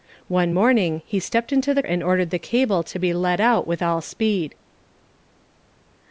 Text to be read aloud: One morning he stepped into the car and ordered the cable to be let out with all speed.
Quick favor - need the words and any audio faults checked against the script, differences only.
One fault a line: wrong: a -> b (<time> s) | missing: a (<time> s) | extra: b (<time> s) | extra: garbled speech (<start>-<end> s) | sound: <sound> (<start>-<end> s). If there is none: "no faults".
missing: car (1.8 s)